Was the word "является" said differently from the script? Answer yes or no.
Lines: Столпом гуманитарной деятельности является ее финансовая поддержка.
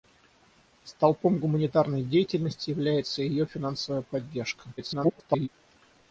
no